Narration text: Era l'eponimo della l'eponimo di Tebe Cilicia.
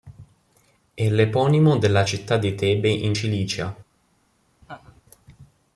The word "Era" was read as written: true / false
false